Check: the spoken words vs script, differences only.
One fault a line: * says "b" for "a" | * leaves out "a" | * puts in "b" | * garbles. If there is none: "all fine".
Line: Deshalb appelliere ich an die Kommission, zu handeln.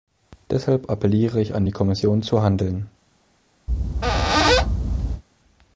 all fine